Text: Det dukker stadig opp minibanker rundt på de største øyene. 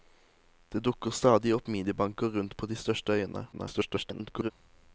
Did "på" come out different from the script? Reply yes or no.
no